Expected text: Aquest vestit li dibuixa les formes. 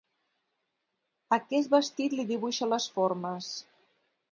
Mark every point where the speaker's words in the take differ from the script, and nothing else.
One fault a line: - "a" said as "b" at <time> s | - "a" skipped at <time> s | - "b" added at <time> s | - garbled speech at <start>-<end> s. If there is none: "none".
none